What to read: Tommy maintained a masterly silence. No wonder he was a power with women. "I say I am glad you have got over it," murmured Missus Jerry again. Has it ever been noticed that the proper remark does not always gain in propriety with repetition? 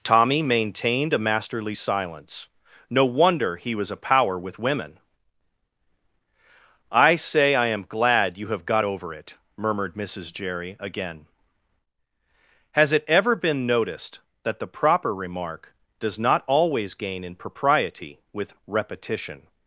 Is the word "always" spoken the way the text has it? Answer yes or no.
yes